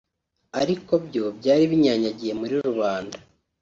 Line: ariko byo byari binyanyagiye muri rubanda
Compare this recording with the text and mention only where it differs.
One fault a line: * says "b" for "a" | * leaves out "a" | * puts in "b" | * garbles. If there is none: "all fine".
all fine